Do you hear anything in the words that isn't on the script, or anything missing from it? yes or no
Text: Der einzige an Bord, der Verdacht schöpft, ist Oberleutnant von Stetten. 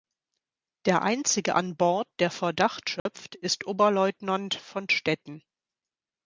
no